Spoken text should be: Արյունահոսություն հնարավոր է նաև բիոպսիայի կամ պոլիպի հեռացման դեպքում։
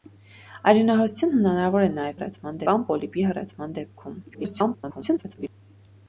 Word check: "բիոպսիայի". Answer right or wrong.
wrong